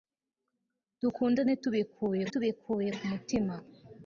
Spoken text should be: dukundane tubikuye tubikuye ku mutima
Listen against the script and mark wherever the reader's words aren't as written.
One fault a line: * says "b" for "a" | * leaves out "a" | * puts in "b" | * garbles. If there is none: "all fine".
all fine